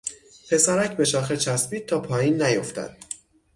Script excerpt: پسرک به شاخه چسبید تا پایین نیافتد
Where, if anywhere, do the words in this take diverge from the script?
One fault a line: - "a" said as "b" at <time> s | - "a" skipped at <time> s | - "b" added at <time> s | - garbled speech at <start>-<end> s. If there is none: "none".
none